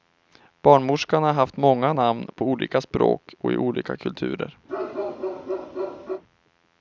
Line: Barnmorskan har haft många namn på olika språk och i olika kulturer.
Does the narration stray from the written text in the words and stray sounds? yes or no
yes